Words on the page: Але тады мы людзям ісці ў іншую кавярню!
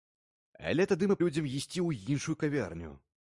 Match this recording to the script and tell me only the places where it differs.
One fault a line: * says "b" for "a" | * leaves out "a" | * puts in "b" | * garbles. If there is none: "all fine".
all fine